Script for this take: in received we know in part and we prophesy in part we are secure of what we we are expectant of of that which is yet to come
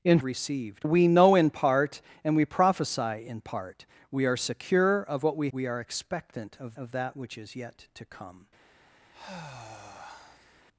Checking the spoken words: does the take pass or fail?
pass